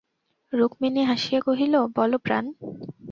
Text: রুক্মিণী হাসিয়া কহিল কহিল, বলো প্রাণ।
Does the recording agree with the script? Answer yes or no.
no